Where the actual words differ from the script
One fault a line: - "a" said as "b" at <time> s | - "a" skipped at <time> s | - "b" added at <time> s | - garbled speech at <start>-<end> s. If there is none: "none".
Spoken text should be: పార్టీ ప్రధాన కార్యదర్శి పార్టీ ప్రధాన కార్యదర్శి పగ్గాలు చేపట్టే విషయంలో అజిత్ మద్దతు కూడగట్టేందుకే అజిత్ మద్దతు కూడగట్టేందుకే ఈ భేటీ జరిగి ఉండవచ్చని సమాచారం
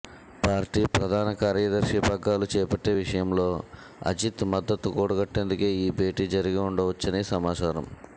- "పార్టీ ప్రధాన కార్యదర్శి" skipped at 2.0 s
- "అజిత్ మద్దతు కూడగట్టేందుకే" skipped at 5.7 s